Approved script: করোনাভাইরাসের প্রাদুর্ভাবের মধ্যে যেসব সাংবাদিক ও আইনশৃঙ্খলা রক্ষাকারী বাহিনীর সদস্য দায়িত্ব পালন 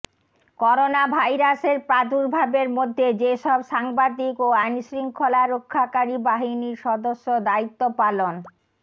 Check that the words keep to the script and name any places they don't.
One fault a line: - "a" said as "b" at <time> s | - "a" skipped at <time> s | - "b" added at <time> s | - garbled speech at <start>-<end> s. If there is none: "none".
none